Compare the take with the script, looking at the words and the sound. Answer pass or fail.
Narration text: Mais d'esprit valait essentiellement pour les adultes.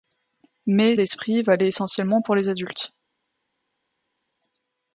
pass